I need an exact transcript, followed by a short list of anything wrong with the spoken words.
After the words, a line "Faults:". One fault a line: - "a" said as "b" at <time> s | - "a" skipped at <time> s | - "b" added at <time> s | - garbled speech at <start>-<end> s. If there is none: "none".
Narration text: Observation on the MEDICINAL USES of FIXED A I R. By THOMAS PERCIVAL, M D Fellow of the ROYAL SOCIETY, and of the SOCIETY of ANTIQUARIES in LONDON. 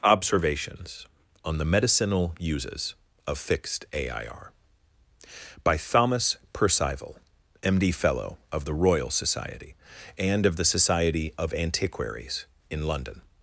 Observations on the MEDICINAL USES of FIXED A I R. By THOMAS PERCIVAL, M D Fellow of the ROYAL SOCIETY, and of the SOCIETY of ANTIQUARIES in LONDON.
Faults:
- "Observation" said as "Observations" at 0.0 s